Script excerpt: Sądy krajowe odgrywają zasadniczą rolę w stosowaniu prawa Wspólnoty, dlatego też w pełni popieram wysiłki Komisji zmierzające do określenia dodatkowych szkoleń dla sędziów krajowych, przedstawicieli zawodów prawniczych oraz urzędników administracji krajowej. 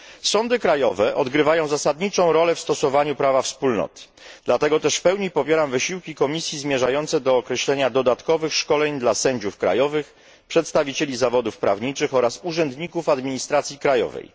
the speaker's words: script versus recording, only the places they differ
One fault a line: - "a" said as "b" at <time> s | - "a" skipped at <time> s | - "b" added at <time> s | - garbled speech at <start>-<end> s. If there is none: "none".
none